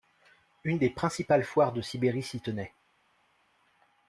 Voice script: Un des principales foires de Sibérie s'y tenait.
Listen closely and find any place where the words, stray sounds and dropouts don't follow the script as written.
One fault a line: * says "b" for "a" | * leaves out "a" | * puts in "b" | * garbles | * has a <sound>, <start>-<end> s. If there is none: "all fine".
* says "Une" for "Un"